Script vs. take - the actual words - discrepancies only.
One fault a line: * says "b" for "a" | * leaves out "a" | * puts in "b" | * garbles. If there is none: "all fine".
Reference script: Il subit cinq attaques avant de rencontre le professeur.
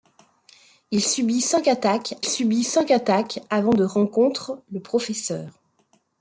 * puts in "subit cinq attaques"